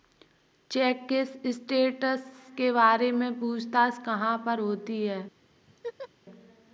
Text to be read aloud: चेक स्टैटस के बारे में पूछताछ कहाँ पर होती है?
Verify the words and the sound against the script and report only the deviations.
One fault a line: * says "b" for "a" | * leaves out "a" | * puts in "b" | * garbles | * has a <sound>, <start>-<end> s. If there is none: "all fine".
* puts in "के"
* has a laugh, 5.7-6.1 s